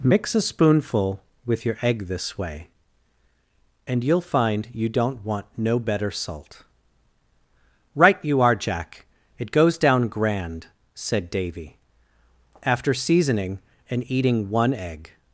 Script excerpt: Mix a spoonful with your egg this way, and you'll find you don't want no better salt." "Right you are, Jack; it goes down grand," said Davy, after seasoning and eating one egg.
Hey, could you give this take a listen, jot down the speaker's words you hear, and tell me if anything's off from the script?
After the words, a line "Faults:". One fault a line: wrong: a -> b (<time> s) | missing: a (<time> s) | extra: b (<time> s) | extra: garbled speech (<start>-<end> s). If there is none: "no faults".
Mix a spoonful with your egg this way, and you'll find you don't want no better salt." "Right you are, Jack; it goes down grand," said Davy, after seasoning and eating one egg.
Faults:
no faults